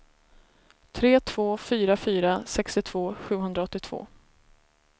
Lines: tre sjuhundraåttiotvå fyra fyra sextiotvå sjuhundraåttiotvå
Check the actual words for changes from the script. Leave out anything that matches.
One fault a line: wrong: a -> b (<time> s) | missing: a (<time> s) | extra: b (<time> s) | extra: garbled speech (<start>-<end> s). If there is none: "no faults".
wrong: sjuhundraåttiotvå -> två (1.2 s)